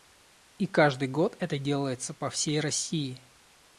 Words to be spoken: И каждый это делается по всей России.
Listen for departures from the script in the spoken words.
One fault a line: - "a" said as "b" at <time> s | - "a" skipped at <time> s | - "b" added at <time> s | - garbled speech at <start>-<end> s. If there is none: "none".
- "год" added at 1.1 s